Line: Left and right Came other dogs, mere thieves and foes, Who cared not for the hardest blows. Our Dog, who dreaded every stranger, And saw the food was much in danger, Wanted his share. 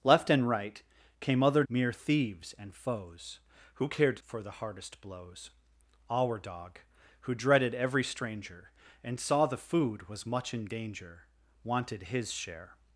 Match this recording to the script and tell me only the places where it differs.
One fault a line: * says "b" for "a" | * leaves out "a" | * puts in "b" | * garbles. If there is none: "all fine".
* leaves out "dogs"
* leaves out "not"